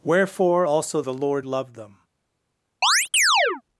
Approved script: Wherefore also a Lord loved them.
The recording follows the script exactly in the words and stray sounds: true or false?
false